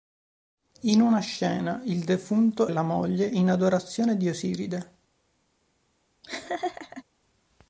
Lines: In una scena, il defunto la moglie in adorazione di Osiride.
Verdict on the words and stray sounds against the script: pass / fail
fail